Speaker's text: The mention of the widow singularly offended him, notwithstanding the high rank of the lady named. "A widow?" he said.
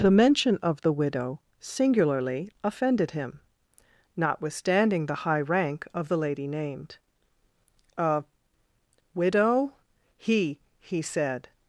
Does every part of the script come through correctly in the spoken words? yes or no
no